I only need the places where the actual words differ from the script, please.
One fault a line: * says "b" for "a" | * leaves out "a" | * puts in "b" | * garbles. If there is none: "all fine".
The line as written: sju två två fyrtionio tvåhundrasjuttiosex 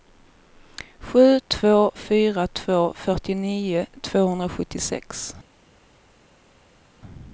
* puts in "fyra"